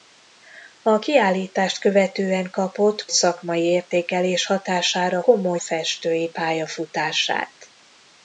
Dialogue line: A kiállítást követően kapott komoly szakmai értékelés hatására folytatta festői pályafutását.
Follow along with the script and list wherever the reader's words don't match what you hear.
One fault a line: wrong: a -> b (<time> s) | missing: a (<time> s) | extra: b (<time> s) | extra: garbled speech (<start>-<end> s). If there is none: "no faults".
missing: komoly (3.1 s)
wrong: folytatta -> komoly (5.2 s)